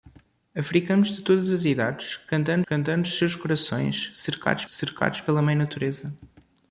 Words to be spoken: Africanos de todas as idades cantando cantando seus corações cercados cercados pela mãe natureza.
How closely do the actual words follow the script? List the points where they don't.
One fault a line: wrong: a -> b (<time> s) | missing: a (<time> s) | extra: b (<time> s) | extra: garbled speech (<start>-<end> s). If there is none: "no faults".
no faults